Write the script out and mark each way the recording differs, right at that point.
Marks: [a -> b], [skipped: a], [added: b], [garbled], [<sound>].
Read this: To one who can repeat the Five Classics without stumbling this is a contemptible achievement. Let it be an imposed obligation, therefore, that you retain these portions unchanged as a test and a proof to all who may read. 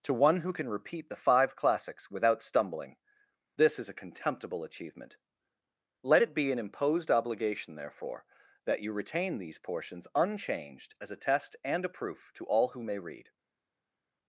To one who can repeat the Five Classics without stumbling this is a contemptible achievement. Let it be an imposed obligation, therefore, that you retain these portions unchanged as a test and a proof to all who may read.